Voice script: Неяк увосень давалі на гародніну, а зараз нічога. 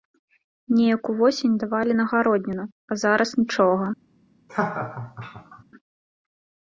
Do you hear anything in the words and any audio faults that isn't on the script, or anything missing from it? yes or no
yes